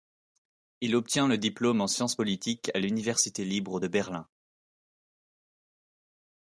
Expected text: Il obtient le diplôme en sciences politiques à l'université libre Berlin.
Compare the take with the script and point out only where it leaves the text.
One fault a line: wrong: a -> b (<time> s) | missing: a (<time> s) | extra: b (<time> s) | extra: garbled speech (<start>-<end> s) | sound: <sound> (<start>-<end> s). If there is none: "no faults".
extra: de (3.8 s)